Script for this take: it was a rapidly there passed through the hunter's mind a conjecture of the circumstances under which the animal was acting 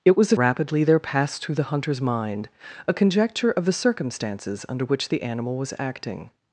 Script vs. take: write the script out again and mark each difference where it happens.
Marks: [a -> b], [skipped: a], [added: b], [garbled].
it was a rapidly there passed through the hunter's mind a conjecture of the circumstances under which the animal was acting